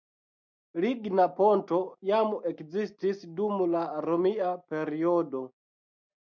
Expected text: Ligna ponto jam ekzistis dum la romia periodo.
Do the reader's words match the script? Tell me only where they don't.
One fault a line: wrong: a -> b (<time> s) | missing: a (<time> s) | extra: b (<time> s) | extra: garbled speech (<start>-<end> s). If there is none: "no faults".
no faults